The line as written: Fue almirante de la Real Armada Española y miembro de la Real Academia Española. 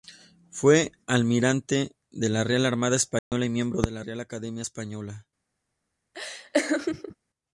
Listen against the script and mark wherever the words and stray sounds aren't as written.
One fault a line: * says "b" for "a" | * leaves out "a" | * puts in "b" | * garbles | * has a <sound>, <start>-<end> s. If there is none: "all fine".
* has a dropout, 3.2-3.3 s
* has a laugh, 6.1-7.2 s